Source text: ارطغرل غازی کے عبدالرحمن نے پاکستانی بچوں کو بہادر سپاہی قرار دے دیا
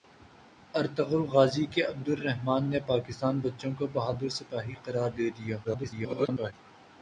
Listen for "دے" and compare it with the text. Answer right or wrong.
right